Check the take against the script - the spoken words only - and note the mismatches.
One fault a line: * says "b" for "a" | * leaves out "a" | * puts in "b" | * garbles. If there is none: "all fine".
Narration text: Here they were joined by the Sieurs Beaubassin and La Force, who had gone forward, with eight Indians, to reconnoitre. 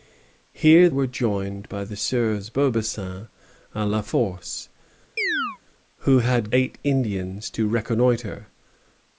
* leaves out "they"
* leaves out "gone forward with"